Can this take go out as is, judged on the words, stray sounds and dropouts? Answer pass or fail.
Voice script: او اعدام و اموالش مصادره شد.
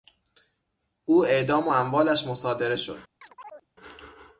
fail